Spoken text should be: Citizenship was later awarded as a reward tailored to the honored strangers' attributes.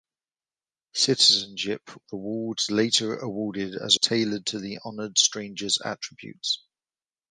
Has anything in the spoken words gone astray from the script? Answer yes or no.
yes